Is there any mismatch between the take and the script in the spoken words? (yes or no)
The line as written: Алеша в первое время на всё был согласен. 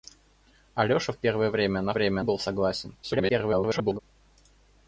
yes